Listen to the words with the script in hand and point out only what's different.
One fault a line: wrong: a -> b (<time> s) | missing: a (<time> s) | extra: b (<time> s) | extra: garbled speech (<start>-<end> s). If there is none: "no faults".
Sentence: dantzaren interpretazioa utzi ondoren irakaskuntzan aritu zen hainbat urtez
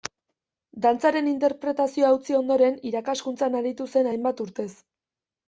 no faults